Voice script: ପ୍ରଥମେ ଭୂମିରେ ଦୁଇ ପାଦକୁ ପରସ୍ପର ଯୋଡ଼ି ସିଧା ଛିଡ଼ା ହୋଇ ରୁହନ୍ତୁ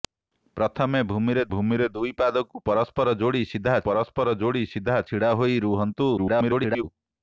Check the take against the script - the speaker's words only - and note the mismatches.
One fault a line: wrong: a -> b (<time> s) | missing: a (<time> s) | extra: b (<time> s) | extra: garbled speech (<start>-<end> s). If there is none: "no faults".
extra: ଭୂମିରେ (1.5 s)
extra: ପରସ୍ପର ଯୋଡ଼ି ସିଧା (3.8 s)
extra: garbled speech (6.2-6.8 s)